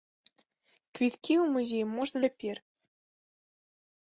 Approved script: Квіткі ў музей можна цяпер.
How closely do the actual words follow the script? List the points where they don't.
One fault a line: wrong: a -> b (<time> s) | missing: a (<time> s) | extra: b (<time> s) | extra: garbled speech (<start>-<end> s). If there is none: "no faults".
no faults